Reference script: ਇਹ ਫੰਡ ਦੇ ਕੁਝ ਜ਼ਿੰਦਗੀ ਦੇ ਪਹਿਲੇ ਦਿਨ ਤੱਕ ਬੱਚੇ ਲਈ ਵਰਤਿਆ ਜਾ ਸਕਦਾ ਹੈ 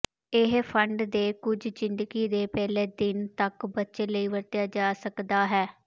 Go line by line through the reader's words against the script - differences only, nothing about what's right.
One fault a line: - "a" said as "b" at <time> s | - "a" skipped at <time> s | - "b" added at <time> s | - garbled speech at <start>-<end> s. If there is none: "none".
none